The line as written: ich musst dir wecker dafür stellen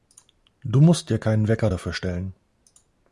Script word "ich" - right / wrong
wrong